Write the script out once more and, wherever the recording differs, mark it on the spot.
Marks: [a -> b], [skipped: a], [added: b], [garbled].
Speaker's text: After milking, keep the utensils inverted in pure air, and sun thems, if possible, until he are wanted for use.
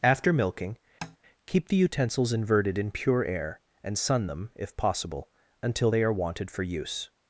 After milking, keep the utensils inverted in pure air, and sun [thems, -> them] if possible, until [he -> they] are wanted for use.